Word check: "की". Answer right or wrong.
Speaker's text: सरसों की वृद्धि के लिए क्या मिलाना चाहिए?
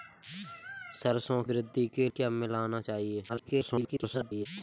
wrong